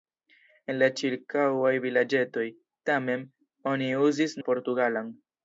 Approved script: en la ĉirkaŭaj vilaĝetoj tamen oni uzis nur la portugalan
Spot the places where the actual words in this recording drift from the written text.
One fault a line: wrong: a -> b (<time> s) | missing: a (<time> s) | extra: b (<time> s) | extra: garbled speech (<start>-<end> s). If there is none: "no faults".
missing: nur (4.4 s)